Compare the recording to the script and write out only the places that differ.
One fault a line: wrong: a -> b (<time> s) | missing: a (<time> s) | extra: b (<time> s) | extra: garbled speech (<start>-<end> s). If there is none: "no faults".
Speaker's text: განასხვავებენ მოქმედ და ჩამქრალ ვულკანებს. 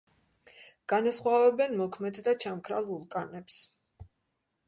no faults